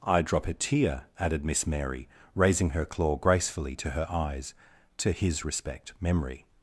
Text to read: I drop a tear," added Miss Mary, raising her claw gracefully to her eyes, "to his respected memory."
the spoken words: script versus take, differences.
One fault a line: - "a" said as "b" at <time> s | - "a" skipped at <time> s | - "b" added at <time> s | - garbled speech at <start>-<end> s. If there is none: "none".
- "respected" said as "respect" at 5.4 s